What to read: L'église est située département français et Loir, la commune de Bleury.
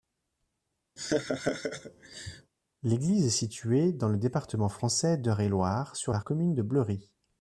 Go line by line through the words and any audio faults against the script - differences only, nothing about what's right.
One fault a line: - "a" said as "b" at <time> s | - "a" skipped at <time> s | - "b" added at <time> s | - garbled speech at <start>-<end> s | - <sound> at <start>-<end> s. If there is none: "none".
- laugh at 1.0-2.5 s
- "dans le" added at 3.9 s
- "d'Eure" added at 5.2 s
- "sur" added at 6.0 s